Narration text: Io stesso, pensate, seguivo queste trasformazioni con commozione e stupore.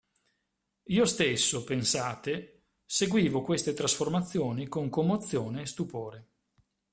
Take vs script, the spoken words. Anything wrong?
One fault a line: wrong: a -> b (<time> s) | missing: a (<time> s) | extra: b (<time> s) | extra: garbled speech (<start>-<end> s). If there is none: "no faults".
no faults